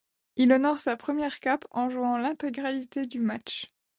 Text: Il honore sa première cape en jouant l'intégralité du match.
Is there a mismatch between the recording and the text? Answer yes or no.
no